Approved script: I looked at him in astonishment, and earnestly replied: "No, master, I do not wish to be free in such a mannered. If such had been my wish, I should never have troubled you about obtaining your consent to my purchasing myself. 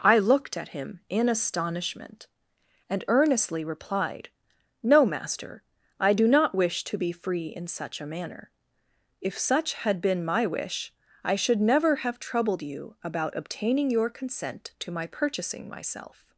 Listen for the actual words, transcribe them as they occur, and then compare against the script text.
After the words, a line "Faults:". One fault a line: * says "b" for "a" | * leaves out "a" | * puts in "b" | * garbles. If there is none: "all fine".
I looked at him in astonishment, and earnestly replied: "No, master, I do not wish to be free in such a manner. If such had been my wish, I should never have troubled you about obtaining your consent to my purchasing myself.
Faults:
* says "manner" for "mannered"